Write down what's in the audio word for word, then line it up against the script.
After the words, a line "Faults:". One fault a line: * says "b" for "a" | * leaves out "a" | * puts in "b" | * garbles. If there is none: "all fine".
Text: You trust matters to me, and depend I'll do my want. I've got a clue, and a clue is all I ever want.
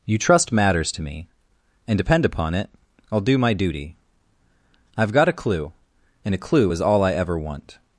You trust matters to me, and depend upon it, I'll do my duty. I've got a clue, and a clue is all I ever want.
Faults:
* puts in "upon it"
* says "duty" for "want"